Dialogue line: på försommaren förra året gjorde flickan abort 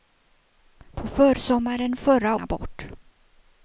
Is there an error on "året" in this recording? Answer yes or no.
yes